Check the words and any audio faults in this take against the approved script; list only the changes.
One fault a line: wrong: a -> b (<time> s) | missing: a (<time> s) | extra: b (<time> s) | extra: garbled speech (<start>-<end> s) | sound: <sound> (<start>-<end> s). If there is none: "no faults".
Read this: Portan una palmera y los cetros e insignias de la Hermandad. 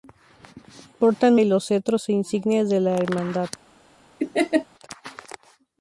missing: una palmera (1.4 s)
sound: laugh (4.2-4.7 s)